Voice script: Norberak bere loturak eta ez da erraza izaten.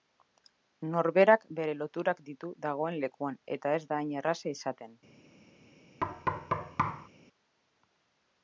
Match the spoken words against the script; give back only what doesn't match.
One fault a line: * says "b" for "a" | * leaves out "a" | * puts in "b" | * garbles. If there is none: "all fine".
* puts in "ditu dagoen lekuan"
* puts in "hain"